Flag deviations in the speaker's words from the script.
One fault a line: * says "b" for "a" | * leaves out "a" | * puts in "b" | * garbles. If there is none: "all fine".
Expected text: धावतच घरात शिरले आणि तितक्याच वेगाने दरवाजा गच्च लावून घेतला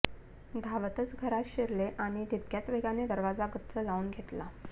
all fine